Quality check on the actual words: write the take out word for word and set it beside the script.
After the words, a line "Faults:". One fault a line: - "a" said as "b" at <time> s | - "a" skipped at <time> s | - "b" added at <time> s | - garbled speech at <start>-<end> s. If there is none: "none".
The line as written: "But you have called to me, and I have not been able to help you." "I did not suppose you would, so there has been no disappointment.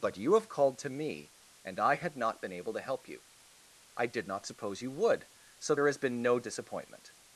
"But you have called to me, and I had not been able to help you." "I did not suppose you would, so there has been no disappointment.
Faults:
- "have" said as "had" at 2.0 s